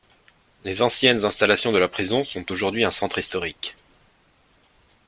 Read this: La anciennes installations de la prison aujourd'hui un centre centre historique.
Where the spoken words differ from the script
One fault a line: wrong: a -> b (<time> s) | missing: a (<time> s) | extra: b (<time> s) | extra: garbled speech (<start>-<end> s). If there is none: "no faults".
wrong: La -> Les (0.6 s)
extra: sont (2.2 s)
missing: centre (3.2 s)